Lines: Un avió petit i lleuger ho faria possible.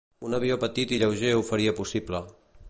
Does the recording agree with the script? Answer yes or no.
yes